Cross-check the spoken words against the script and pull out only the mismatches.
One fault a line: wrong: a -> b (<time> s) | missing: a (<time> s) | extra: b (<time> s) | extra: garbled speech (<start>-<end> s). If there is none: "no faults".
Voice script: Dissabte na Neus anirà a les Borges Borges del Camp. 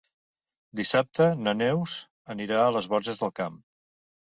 missing: Borges (3.2 s)